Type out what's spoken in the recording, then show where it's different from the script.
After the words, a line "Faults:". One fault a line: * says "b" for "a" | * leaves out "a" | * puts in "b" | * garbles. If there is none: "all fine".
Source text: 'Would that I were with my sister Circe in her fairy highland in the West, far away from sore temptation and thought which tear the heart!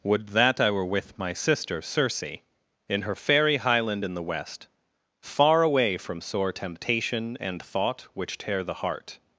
'Would that I were with my sister Circe in her fairy highland in the West, far away from sore temptation and thought which tear the heart!
Faults:
all fine